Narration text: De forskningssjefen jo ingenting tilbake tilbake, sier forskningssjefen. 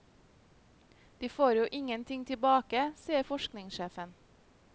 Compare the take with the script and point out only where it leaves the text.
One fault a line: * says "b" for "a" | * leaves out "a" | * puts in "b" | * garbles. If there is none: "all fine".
* says "får" for "forskningssjefen"
* leaves out "tilbake"